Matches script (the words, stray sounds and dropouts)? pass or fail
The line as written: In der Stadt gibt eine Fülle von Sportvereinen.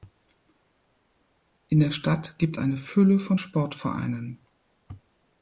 pass